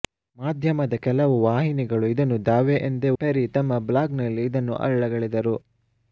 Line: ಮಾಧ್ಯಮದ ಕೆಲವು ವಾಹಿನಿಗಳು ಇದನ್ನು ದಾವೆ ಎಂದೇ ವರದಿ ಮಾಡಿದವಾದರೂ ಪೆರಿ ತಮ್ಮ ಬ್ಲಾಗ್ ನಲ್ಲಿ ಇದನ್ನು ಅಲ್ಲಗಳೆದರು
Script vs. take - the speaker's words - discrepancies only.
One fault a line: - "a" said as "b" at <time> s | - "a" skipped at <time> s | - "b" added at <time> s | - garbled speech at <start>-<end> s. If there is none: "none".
- "ವರದಿ ಮಾಡಿದವಾದರೂ" skipped at 3.1 s